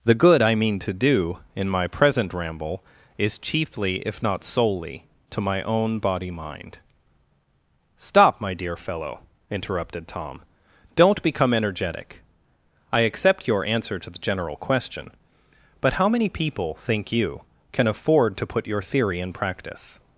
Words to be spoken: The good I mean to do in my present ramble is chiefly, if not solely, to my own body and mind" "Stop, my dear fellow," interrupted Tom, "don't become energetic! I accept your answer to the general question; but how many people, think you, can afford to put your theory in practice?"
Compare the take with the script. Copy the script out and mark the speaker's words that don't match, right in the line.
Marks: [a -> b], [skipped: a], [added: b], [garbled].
The good I mean to do in my present ramble is chiefly, if not solely, to my own body [skipped: and] mind" "Stop, my dear fellow," interrupted Tom, "don't become energetic! I accept your answer to the general question; but how many people, think you, can afford to put your theory in practice?"